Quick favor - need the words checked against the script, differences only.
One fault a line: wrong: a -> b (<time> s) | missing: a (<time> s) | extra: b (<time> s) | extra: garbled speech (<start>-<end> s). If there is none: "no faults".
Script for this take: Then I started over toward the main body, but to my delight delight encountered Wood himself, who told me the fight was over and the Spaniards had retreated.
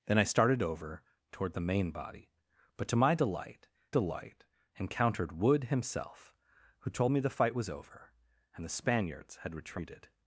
no faults